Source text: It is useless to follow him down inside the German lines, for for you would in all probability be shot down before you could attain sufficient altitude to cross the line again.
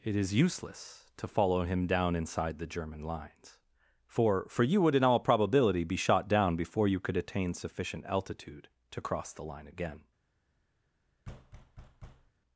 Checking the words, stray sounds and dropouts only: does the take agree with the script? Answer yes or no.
no